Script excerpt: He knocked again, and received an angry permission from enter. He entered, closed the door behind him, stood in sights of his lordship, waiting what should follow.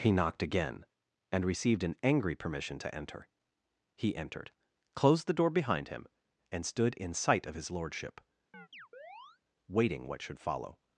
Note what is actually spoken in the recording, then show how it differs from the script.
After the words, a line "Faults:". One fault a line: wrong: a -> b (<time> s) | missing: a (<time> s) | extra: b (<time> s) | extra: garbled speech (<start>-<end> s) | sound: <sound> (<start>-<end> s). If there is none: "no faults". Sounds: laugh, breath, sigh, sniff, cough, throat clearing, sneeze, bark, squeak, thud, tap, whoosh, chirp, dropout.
He knocked again, and received an angry permission to enter. He entered, closed the door behind him, and stood in sight of his lordship, waiting what should follow.
Faults:
wrong: from -> to (2.8 s)
extra: and (6.5 s)
wrong: sights -> sight (7.1 s)
sound: chirp (8.5-9.4 s)